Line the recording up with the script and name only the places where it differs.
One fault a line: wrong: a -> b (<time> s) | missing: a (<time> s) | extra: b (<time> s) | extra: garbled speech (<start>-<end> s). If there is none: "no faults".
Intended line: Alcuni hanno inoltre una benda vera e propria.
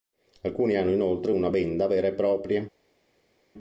no faults